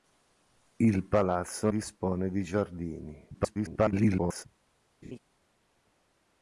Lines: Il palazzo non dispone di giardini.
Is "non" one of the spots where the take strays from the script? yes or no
yes